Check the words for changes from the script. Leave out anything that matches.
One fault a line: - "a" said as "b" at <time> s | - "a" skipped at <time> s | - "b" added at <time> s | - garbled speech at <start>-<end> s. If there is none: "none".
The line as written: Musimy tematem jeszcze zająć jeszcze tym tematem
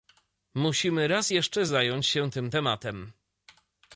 - "tematem" said as "raz" at 1.1 s
- "jeszcze" said as "się" at 2.1 s